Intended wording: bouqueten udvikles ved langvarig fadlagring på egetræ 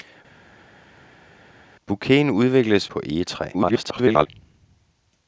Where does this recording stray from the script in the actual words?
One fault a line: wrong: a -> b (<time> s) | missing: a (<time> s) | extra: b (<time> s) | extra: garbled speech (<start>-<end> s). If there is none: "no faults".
missing: ved langvarig fadlagring (2.9 s)
extra: garbled speech (3.5-4.3 s)